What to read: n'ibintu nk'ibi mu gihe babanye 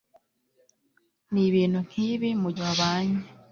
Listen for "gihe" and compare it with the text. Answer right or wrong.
wrong